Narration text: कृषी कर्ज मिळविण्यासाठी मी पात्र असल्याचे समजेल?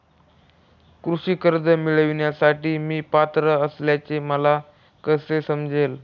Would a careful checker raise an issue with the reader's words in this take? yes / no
yes